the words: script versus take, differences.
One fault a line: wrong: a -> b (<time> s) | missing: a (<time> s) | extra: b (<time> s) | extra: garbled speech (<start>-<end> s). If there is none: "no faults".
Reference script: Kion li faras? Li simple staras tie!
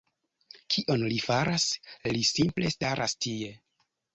no faults